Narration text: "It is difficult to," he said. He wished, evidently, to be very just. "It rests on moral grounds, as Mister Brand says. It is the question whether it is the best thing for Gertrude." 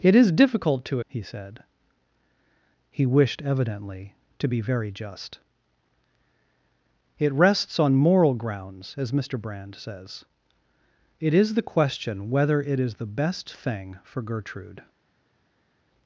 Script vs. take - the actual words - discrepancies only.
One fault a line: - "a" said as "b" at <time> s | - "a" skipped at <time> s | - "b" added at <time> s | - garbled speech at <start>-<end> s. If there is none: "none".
none